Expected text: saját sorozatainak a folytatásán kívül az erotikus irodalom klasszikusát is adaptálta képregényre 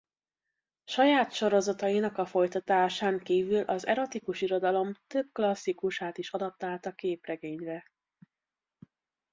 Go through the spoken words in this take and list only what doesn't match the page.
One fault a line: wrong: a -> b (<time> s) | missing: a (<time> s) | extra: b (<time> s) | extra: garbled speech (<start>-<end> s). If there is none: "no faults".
extra: több (5.1 s)